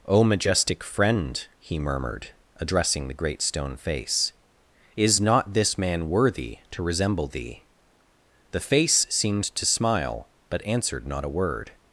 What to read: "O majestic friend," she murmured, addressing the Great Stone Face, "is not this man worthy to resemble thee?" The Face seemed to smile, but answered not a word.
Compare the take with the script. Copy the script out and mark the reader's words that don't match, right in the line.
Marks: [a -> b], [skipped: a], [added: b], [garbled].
"O majestic friend," [she -> he] murmured, addressing the Great Stone Face, "is not this man worthy to resemble thee?" The Face seemed to smile, but answered not a word.